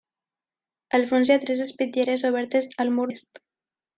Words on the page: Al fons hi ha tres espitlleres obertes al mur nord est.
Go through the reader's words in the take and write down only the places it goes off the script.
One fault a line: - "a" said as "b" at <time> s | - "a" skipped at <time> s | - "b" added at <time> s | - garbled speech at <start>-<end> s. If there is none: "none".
- "nord" skipped at 3.1 s